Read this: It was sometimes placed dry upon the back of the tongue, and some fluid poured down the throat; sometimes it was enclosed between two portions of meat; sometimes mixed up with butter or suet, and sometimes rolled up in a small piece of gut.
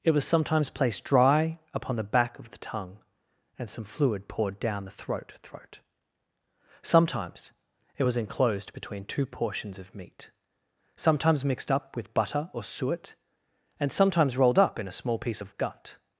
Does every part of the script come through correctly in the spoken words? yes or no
no